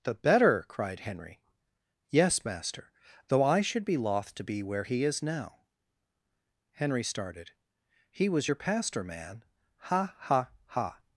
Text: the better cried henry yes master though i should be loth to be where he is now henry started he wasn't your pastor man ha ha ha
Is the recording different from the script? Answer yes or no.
yes